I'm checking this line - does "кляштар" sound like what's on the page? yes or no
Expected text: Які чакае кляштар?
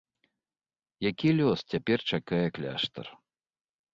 yes